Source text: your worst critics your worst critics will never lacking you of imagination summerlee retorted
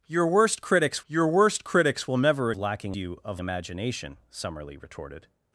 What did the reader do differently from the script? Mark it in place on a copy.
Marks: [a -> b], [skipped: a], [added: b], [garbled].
your worst critics your worst critics will never lacking you of imagination summerlee retorted